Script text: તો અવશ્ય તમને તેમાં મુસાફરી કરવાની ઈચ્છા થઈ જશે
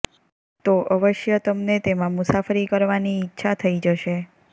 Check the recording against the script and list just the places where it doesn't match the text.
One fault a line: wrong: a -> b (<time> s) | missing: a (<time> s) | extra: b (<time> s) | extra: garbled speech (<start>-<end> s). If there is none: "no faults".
no faults